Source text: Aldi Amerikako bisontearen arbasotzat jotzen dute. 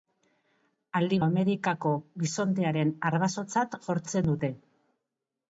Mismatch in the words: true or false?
false